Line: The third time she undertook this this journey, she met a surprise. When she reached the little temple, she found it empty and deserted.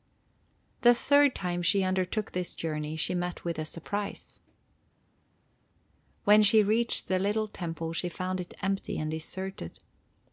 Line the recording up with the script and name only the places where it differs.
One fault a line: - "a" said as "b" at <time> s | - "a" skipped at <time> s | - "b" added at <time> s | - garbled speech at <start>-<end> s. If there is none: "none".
- "this" skipped at 2.5 s
- "with" added at 3.4 s